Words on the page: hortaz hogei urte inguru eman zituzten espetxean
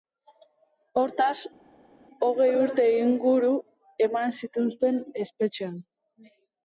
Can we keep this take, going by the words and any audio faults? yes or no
yes